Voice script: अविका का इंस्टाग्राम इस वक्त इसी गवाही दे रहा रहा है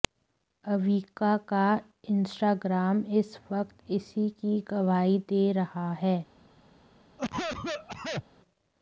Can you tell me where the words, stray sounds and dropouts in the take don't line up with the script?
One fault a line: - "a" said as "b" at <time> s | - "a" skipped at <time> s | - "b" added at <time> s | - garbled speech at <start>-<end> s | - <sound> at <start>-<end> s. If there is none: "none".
- "की" added at 4.3 s
- "रहा" skipped at 5.9 s
- cough at 7.2-8.2 s